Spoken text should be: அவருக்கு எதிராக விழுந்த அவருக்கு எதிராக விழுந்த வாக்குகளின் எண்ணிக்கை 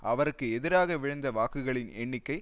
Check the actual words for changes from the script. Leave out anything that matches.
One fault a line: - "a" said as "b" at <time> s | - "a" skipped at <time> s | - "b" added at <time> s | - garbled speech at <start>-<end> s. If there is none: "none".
- "அவருக்கு எதிராக விழுந்த" skipped at 1.3 s